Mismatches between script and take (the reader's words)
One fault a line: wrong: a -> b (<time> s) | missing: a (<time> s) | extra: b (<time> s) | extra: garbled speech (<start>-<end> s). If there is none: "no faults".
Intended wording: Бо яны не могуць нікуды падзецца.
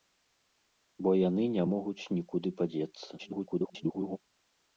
extra: garbled speech (3.2-4.2 s)